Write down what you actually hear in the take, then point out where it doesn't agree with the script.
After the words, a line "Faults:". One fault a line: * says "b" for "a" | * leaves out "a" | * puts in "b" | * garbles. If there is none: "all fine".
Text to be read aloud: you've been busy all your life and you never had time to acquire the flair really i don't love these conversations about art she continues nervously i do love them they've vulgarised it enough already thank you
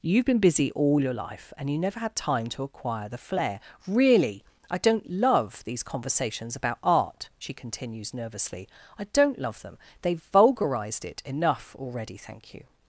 you've been busy all your life and you never had time to acquire the flair really i don't love these conversations about art she continues nervously i don't love them they've vulgarised it enough already thank you
Faults:
* says "don't" for "do"